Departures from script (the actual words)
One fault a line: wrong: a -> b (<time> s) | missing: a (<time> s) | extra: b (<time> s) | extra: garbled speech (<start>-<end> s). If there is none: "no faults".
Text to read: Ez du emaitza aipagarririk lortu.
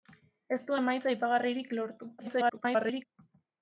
extra: garbled speech (2.2-3.0 s)